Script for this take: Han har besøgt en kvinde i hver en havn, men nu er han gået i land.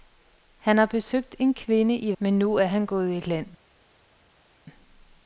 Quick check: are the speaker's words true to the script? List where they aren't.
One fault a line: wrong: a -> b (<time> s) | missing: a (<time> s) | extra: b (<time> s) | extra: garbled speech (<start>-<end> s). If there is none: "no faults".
missing: hver en havn (2.1 s)